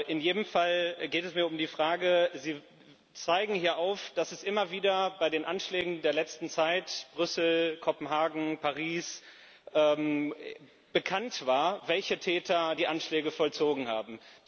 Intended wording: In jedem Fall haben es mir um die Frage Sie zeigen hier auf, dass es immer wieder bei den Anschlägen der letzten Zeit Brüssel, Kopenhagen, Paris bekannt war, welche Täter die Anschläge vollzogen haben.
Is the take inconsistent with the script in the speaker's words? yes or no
yes